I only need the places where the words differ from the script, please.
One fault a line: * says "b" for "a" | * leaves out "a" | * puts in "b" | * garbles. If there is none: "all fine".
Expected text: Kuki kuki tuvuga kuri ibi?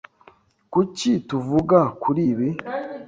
* leaves out "kuki"